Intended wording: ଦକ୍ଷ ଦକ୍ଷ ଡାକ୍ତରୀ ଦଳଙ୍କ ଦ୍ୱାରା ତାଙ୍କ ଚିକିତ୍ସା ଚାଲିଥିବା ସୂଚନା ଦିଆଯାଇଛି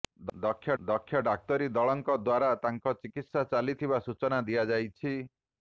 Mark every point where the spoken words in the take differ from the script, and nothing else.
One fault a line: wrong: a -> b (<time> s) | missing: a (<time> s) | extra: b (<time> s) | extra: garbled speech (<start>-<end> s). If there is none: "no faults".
no faults